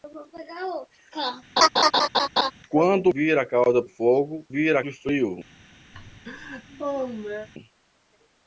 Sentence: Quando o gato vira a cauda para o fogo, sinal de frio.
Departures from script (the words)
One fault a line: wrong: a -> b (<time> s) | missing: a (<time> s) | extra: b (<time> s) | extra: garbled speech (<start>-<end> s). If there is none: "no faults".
missing: gato (3.1 s)
missing: para (3.8 s)
wrong: sinal -> vira (4.5 s)